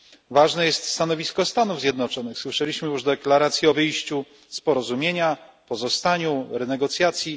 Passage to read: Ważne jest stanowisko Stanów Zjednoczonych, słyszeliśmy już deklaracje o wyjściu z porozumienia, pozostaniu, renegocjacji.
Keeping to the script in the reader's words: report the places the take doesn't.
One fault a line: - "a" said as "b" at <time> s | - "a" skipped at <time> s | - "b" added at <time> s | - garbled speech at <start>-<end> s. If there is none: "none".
none